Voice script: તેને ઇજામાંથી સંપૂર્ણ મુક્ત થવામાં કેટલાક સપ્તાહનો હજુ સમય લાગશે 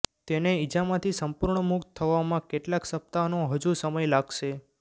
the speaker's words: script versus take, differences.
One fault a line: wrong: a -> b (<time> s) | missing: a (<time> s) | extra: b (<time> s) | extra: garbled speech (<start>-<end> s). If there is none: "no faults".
no faults